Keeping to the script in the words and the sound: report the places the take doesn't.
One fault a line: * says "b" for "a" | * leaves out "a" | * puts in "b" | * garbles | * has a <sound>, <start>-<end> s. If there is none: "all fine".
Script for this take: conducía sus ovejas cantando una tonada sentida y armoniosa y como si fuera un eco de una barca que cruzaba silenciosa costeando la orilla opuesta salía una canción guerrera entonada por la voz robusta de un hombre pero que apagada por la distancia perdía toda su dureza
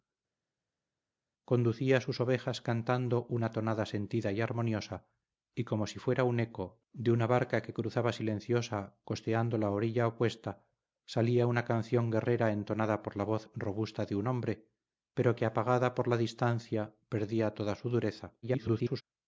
* garbles